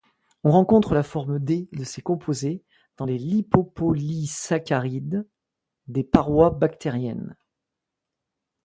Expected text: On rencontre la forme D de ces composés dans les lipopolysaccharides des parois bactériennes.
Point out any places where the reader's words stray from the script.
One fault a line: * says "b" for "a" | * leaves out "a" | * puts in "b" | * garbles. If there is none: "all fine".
all fine